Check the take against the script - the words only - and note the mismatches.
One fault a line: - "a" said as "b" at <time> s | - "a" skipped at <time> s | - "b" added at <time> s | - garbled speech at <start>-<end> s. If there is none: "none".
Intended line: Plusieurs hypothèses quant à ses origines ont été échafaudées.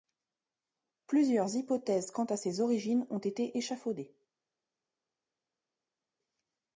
none